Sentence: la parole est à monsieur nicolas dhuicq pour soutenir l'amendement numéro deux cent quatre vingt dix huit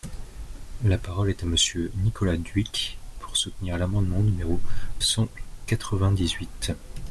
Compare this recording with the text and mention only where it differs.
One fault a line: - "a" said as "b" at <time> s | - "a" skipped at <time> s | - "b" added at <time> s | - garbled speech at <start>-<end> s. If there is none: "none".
- "deux" skipped at 4.6 s